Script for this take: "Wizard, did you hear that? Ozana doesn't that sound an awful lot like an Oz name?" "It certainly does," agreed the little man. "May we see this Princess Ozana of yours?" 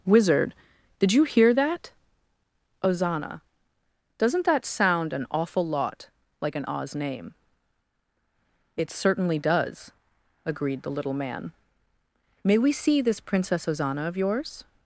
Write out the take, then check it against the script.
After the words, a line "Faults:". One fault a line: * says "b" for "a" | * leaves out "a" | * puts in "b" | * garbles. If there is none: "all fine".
"Wizard, did you hear that? Ozana doesn't that sound an awful lot like an Oz name?" "It certainly does," agreed the little man. "May we see this Princess Ozana of yours?"
Faults:
all fine